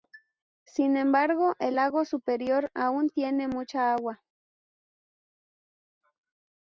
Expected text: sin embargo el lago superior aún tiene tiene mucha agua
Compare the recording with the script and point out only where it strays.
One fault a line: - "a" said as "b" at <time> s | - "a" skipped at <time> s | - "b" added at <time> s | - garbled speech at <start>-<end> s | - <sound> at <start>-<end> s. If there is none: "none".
- "tiene" skipped at 3.5 s